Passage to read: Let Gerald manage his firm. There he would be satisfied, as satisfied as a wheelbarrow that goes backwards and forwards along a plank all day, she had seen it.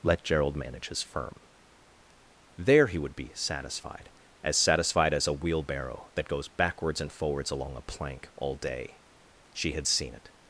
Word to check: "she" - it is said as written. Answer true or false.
true